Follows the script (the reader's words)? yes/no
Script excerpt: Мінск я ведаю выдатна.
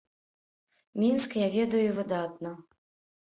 yes